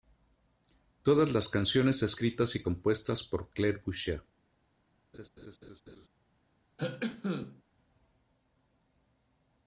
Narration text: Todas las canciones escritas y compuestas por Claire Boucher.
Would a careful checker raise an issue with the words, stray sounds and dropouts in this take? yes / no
yes